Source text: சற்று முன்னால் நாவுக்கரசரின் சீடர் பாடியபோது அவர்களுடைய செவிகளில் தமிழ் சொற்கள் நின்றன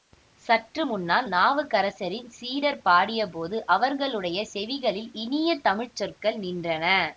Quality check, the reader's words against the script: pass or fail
fail